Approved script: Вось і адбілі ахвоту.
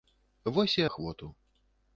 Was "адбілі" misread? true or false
true